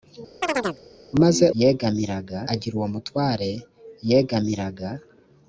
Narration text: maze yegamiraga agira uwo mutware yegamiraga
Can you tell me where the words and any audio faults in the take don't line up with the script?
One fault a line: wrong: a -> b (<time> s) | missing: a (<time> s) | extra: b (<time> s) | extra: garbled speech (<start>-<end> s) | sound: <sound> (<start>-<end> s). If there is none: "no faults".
sound: chirp (0.4-0.8 s)